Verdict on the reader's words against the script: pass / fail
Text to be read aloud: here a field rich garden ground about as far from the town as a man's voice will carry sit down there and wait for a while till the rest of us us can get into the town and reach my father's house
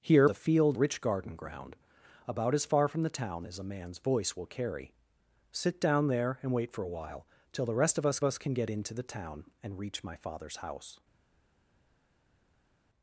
pass